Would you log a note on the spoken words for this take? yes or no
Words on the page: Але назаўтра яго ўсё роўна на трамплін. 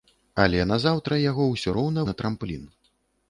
no